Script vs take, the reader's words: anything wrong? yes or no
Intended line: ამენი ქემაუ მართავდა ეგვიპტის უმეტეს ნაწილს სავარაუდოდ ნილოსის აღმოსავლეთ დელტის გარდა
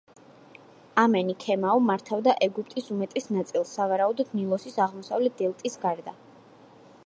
no